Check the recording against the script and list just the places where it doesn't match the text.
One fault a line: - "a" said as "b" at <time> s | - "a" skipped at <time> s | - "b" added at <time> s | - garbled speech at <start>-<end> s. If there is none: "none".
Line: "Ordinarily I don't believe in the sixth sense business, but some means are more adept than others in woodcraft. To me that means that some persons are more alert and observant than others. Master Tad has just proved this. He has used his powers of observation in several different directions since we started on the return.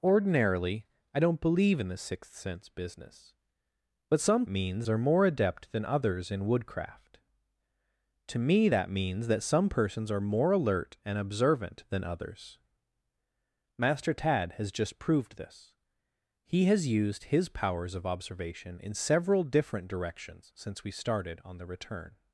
none